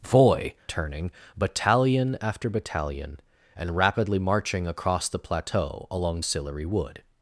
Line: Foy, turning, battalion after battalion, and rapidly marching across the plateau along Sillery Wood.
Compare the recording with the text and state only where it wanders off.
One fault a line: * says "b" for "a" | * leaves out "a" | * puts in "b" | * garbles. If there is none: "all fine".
all fine